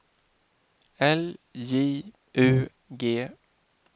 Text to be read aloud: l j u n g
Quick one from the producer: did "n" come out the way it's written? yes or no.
no